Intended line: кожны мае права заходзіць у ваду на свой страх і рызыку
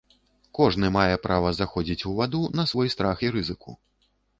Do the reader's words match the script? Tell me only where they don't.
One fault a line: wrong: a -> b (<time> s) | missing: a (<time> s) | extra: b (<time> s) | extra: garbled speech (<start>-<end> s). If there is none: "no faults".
no faults